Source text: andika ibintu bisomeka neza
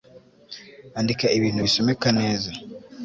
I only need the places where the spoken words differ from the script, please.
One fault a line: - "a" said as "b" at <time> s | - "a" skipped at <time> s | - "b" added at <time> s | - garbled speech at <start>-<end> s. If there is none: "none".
none